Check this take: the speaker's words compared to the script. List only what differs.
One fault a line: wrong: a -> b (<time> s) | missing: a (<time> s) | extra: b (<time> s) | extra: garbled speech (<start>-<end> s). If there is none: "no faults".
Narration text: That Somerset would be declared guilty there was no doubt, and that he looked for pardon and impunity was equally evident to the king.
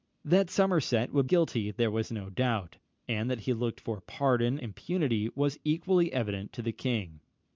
missing: be declared (1.3 s)
missing: and (4.6 s)